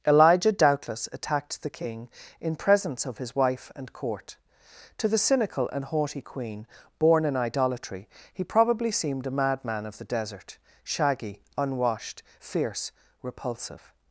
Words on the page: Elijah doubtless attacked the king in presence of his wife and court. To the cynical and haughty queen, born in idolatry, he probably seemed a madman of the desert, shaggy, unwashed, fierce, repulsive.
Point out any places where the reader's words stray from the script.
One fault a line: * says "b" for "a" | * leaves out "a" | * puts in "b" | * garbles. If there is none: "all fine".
all fine